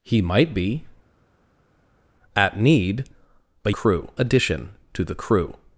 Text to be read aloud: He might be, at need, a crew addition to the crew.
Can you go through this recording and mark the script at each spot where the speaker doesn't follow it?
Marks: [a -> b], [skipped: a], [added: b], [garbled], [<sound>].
He might be, at need, a crew addition to the crew.